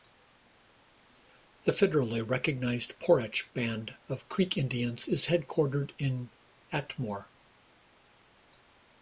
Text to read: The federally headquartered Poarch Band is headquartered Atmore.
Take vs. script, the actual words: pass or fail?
fail